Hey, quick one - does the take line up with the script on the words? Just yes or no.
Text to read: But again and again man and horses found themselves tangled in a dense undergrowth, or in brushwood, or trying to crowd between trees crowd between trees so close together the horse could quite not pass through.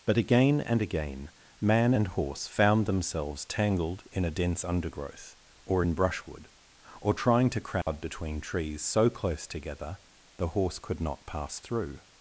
no